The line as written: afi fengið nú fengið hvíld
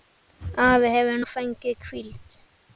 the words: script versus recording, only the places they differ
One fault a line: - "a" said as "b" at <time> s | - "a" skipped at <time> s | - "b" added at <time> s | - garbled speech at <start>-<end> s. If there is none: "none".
- "fengið" said as "hefur" at 0.9 s